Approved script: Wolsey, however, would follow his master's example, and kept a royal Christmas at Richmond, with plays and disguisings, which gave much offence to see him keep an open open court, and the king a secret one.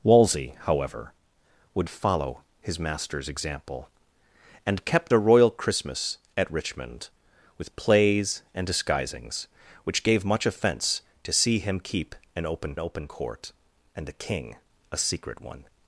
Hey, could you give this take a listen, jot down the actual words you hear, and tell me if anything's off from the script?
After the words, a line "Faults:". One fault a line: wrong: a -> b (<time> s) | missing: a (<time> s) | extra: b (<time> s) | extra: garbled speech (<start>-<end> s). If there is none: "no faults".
Wolsey, however, would follow his master's example, and kept a royal Christmas at Richmond, with plays and disguisings, which gave much offence to see him keep an open open court, and the king a secret one.
Faults:
no faults